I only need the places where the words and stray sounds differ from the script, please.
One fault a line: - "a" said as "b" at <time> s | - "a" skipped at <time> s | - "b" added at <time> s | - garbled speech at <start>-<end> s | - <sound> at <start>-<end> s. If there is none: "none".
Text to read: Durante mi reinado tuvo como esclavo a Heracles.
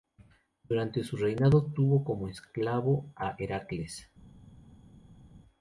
- "mi" said as "su" at 1.0 s